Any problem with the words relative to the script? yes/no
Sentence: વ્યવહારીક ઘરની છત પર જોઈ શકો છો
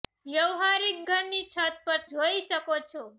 no